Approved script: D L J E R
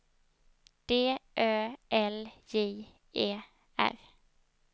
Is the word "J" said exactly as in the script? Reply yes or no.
yes